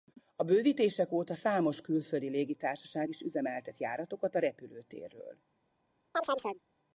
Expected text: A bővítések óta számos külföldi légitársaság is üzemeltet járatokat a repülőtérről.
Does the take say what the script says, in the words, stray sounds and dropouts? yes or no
no